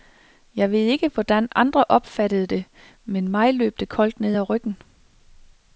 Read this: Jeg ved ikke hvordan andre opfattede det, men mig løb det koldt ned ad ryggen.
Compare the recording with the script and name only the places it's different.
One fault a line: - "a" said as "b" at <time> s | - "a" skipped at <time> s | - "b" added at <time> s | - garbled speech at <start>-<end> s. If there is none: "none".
none